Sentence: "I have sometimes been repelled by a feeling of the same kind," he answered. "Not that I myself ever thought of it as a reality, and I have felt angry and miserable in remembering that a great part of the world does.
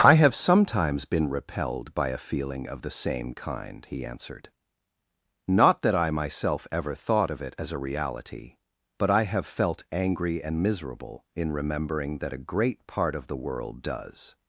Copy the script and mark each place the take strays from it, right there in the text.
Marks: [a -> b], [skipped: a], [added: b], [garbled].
"I have sometimes been repelled by a feeling of the same kind," he answered. "Not that I myself ever thought of it as a reality, [and -> but] I have felt angry and miserable in remembering that a great part of the world does.